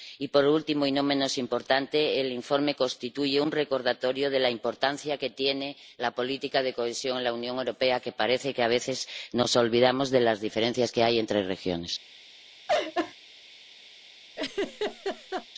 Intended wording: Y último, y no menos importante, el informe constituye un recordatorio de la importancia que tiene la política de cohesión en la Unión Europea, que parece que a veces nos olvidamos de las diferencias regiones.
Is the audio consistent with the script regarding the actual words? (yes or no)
no